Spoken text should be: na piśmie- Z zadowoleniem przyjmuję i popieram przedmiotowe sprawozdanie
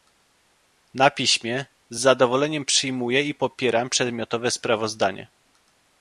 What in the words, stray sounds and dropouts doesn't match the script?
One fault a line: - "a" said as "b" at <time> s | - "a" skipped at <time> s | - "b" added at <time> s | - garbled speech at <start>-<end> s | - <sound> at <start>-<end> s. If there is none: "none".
none